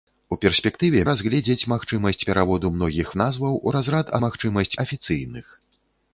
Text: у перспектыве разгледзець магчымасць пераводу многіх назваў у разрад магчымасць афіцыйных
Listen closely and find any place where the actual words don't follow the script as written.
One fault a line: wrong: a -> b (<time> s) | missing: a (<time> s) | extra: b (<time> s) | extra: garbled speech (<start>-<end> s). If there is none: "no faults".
no faults